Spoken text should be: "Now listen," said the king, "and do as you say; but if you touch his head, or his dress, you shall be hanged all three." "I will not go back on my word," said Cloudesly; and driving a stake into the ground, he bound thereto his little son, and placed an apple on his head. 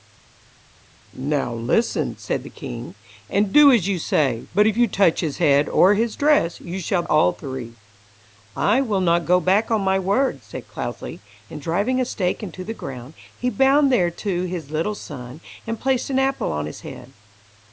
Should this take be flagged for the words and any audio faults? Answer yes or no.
yes